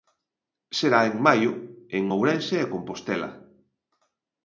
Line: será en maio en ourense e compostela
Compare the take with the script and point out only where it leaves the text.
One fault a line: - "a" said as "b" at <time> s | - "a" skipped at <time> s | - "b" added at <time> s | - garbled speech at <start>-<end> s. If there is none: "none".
none